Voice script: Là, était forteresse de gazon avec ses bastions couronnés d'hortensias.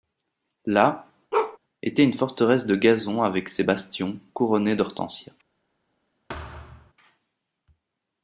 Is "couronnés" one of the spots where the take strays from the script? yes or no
no